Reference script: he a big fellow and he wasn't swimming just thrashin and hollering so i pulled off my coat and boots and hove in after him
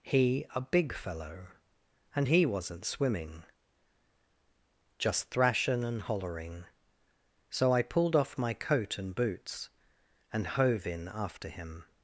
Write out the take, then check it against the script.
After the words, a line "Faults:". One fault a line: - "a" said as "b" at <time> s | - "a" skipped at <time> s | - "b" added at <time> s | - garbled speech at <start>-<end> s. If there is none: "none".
he a big fellow and he wasn't swimming just thrashin and hollering so i pulled off my coat and boots and hove in after him
Faults:
none